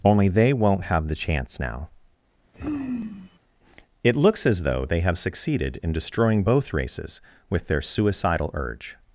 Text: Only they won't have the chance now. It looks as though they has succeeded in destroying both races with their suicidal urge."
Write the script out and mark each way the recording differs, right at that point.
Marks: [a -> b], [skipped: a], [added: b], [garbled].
Only they won't have the chance now. It looks as though they [has -> have] succeeded in destroying both races with their suicidal urge."